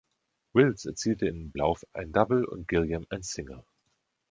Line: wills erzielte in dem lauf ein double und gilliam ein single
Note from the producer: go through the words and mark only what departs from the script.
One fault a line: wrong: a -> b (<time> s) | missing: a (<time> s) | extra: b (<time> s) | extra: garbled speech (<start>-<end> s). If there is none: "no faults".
missing: dem (1.5 s)